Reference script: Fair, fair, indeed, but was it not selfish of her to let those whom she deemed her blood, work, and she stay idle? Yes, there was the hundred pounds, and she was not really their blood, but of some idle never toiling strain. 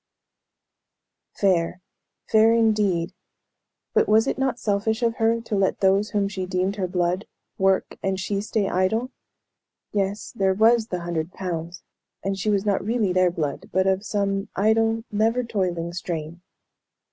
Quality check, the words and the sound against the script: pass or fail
pass